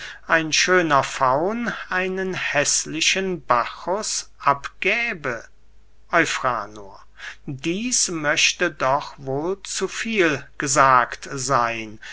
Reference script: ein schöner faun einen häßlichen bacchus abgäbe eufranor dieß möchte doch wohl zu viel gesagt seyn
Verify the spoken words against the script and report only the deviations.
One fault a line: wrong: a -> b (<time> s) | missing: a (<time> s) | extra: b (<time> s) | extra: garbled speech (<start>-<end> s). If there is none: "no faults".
no faults